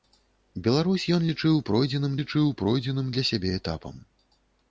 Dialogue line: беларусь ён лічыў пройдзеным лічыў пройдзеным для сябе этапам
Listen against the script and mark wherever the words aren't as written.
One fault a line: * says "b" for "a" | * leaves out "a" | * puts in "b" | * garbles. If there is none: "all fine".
all fine